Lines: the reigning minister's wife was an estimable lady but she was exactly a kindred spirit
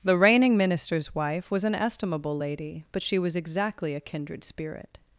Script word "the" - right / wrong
right